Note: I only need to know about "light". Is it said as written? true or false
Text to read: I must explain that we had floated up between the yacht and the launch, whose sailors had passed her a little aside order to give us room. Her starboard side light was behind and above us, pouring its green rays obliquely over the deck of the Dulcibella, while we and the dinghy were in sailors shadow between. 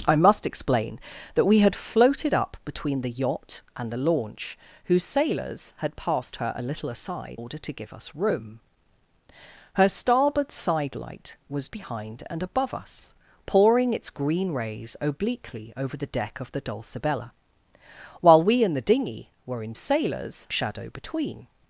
true